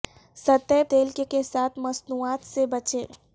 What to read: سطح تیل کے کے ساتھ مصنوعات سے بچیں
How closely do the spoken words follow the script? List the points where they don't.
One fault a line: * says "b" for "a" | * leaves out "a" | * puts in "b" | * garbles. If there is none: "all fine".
all fine